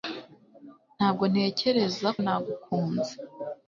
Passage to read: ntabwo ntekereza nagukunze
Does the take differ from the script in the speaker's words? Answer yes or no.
no